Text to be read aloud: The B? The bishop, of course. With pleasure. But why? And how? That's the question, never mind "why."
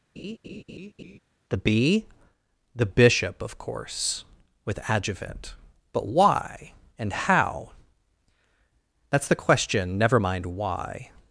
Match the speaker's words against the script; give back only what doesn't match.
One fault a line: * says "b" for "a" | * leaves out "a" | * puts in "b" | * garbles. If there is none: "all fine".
* says "adjuvant" for "pleasure"